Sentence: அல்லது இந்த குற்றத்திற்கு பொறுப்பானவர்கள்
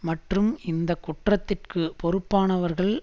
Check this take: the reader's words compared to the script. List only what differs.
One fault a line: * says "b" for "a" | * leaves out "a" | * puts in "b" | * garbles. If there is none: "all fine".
* says "மற்றும்" for "அல்லது"